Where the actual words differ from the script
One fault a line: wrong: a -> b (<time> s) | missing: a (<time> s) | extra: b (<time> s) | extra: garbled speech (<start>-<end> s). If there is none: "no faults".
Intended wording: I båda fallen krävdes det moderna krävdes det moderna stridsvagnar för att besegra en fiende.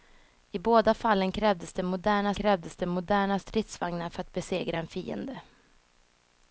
no faults